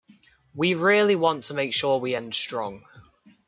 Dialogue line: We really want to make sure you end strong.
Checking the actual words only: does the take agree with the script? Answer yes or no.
no